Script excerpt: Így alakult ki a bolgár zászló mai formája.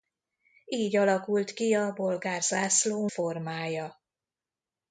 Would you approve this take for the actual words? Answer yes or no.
no